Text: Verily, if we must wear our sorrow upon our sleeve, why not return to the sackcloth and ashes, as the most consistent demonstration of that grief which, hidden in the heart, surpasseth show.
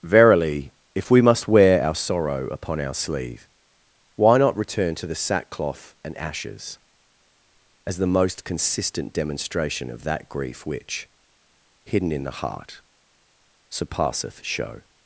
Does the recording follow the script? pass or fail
pass